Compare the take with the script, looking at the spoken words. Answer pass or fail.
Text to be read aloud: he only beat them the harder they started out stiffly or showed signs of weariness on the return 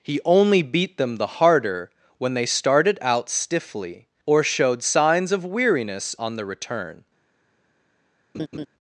fail